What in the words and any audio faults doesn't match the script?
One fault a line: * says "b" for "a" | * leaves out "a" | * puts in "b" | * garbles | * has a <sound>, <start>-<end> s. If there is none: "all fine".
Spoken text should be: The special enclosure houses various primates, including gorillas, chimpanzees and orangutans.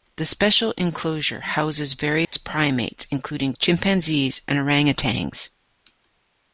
* has a dropout, 2.2-2.3 s
* leaves out "gorillas"